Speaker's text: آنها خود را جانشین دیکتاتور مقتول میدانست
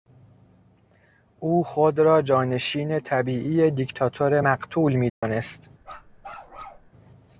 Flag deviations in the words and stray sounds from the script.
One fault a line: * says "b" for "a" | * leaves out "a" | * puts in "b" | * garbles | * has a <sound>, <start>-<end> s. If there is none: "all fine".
* says "او" for "آنها"
* puts in "طبیعی"
* has a dropout, 5.1-5.2 s
* has a bark, 5.8-6.9 s